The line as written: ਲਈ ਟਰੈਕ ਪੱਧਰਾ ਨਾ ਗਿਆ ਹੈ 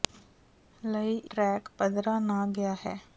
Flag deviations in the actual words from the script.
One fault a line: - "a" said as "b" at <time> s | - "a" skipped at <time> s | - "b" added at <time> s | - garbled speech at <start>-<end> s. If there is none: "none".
none